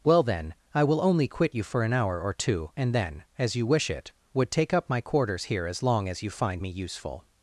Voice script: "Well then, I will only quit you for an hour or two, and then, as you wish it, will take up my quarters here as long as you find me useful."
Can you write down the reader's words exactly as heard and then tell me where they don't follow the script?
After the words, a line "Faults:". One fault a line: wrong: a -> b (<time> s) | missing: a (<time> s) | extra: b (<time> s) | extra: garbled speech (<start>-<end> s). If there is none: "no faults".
"Well then, I will only quit you for an hour or two, and then, as you wish it, would take up my quarters here as long as you find me useful."
Faults:
wrong: will -> would (4.3 s)